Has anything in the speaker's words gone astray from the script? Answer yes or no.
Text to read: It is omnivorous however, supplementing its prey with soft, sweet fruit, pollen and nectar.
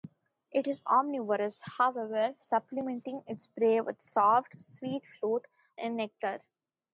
yes